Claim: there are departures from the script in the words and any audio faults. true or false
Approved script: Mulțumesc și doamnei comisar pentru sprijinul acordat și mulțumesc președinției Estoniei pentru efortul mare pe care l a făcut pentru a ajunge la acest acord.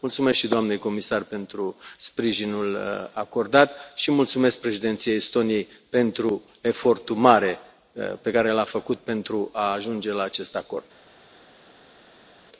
false